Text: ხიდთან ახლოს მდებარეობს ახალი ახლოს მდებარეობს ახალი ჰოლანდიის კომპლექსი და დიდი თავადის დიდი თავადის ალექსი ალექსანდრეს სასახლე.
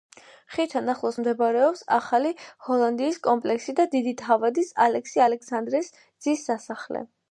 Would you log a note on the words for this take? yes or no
yes